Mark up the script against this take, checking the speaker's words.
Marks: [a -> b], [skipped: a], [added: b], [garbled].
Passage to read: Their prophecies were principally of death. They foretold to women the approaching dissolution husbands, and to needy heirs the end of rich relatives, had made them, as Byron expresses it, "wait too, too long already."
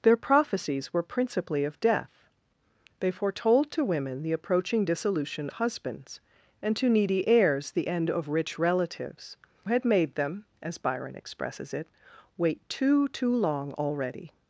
Their prophecies were principally of death. They foretold to women the approaching dissolution husbands, and to needy heirs the end of rich relatives, had made them, as Byron expresses it, "wait too, too long already."